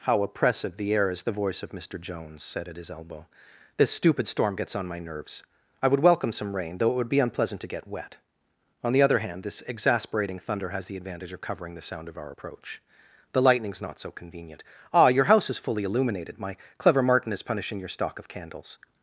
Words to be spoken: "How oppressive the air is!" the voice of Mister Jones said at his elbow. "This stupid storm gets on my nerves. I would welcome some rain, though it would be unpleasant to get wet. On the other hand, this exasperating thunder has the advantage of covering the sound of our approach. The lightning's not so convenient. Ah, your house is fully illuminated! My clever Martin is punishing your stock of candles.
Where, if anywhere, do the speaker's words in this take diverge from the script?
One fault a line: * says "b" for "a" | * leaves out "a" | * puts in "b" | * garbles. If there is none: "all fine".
all fine